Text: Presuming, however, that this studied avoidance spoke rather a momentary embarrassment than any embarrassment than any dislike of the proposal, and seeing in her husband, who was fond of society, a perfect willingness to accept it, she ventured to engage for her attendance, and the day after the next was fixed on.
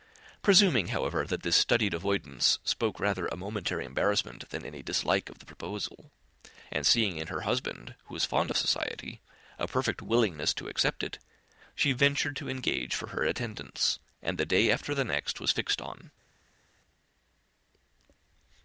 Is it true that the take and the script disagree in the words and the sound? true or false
true